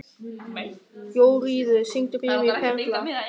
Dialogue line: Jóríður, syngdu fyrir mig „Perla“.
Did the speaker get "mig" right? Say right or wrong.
right